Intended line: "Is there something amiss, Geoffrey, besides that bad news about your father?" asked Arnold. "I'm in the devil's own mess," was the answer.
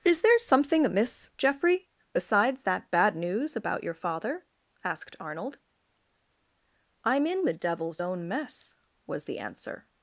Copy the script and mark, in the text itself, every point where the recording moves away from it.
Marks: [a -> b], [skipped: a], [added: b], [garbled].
"Is there something amiss, Geoffrey, besides that bad news about your father?" asked Arnold. "I'm in the devil's own mess," was the answer.